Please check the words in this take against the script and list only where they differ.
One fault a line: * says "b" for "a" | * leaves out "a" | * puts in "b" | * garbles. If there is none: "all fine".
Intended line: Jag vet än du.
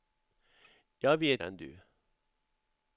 all fine